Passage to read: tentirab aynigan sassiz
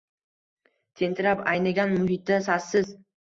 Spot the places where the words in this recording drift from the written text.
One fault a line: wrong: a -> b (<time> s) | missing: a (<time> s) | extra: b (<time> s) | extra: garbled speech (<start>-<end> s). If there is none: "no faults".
extra: muhitda (2.0 s)